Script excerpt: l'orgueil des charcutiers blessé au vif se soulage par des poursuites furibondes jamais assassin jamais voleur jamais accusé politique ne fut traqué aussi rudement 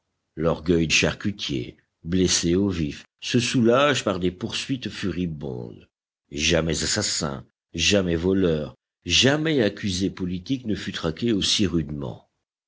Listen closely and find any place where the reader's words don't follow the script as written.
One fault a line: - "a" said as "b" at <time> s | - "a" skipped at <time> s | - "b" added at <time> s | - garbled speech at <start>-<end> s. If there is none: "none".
- "des" skipped at 0.9 s